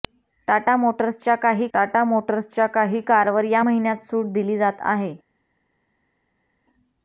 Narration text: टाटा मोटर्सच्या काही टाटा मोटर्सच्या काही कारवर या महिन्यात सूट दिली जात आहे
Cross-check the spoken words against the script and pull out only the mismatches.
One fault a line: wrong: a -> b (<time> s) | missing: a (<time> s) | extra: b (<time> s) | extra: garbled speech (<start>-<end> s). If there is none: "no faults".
no faults